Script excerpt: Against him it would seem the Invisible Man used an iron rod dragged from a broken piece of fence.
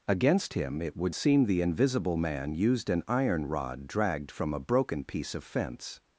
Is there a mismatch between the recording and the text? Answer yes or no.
no